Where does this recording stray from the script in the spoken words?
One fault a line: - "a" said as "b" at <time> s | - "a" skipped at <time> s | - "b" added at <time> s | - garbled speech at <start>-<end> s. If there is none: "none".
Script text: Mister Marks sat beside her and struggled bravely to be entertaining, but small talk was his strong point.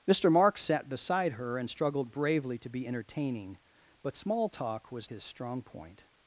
none